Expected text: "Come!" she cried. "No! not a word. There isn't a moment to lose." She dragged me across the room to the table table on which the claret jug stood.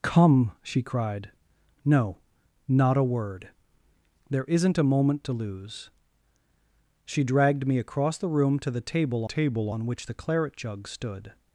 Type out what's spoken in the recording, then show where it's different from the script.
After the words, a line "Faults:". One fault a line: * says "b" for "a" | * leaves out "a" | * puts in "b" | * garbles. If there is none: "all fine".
"Come!" she cried. "No! not a word. There isn't a moment to lose." She dragged me across the room to the table table on which the claret jug stood.
Faults:
all fine